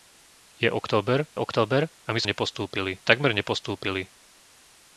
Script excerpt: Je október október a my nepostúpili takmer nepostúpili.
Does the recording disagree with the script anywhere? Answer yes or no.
no